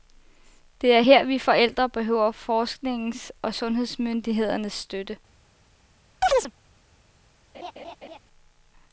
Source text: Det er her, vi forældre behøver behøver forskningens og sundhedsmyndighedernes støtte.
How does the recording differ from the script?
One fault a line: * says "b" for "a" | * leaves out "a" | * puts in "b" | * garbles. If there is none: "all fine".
* leaves out "behøver"